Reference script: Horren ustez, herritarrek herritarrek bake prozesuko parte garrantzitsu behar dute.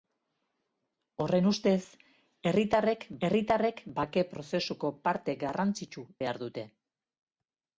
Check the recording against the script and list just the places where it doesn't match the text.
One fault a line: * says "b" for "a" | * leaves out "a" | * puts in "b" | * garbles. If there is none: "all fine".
all fine